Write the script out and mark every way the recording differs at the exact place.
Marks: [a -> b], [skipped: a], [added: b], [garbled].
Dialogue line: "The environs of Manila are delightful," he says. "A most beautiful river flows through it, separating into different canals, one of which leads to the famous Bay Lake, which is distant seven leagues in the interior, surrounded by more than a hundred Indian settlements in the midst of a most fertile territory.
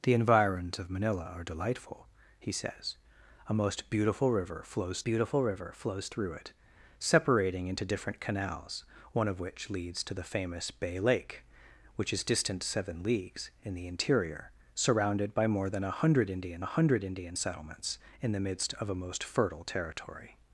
"The environs of Manila are delightful," he says. "A most beautiful river flows [added: beautiful river flows] through it, separating into different canals, one of which leads to the famous Bay Lake, which is distant seven leagues in the interior, surrounded by more than a hundred Indian [added: a hundred Indian] settlements in the midst of a most fertile territory.